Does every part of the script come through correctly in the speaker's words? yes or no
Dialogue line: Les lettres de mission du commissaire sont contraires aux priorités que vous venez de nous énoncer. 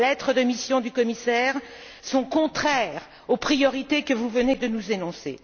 yes